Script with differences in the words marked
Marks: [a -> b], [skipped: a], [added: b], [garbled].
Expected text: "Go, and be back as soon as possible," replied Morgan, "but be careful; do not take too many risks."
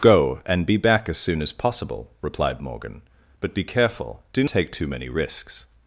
"Go, and be back as soon as possible," replied Morgan, "but be careful; do [skipped: not] take too many risks."